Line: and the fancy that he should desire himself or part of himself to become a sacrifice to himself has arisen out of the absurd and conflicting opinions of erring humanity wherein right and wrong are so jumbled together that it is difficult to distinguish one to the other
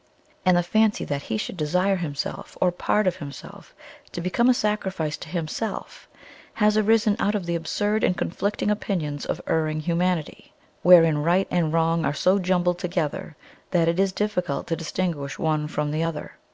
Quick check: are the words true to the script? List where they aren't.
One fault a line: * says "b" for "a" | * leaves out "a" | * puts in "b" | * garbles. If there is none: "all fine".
* says "from" for "to"